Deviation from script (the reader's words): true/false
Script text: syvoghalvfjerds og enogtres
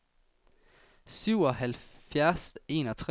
false